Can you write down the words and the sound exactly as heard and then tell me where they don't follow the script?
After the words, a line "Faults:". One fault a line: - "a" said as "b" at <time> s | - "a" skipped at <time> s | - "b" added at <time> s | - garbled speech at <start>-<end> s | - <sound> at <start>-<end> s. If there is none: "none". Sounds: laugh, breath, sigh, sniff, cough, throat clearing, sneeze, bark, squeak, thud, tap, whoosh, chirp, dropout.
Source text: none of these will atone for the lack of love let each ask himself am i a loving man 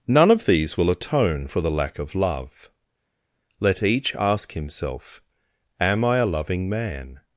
none of these will atone for the lack of love let each ask himself am i a loving man
Faults:
none